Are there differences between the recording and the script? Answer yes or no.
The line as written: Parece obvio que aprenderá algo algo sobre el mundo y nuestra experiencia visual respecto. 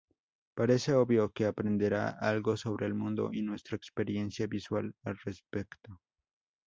yes